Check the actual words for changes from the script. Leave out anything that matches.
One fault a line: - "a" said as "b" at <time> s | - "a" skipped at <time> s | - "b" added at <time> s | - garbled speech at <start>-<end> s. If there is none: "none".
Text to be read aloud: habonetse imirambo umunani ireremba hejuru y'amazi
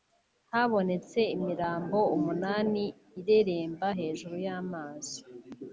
none